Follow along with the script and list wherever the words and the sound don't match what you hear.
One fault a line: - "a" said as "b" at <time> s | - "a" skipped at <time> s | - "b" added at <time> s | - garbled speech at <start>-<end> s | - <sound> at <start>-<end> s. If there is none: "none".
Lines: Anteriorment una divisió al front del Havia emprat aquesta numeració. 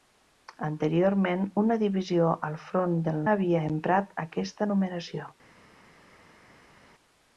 none